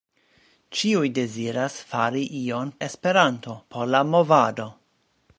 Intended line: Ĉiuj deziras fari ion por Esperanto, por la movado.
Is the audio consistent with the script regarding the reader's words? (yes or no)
no